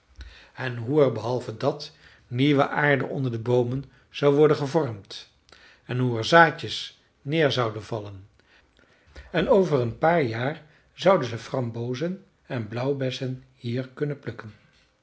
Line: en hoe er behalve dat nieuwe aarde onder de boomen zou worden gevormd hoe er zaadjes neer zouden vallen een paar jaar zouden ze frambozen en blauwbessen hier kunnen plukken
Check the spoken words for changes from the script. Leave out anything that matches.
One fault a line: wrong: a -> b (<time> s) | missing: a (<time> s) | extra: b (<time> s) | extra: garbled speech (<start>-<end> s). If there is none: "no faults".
extra: en (5.9 s)
extra: en over (9.3 s)